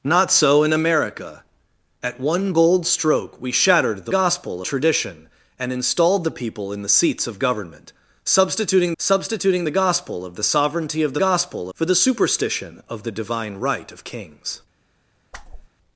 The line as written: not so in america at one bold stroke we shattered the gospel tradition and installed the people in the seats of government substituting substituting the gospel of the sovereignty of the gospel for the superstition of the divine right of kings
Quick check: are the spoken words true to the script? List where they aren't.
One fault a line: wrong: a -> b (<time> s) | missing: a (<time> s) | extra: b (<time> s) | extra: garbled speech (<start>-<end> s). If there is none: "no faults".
no faults